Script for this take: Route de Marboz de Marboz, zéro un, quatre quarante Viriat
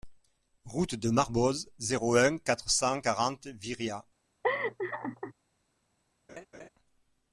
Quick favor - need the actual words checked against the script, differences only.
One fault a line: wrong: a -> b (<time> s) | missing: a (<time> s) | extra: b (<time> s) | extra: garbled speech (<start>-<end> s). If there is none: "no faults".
missing: de Marboz (1.7 s)
extra: cent (2.7 s)